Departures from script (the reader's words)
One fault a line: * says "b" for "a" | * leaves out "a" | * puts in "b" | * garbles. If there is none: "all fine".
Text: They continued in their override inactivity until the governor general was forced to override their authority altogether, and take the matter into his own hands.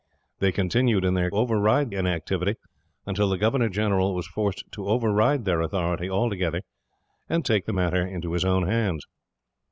all fine